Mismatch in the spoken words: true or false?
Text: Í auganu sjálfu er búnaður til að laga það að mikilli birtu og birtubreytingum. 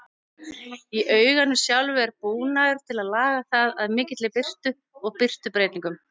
false